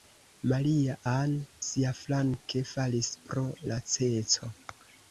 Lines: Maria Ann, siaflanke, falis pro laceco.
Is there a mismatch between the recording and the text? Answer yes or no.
no